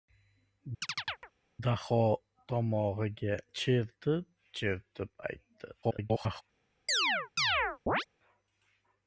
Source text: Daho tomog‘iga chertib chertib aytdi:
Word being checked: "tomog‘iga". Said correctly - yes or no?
yes